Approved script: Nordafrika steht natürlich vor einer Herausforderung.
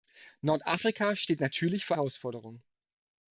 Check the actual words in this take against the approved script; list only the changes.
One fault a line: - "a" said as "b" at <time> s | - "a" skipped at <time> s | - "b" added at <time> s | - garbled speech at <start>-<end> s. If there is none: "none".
- "einer" skipped at 1.9 s